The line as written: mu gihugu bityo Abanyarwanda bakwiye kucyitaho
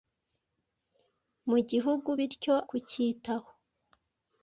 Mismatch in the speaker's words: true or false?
true